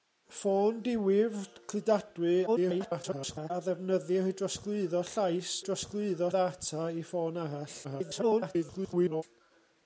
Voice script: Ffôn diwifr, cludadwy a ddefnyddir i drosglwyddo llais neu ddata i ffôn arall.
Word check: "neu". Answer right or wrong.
wrong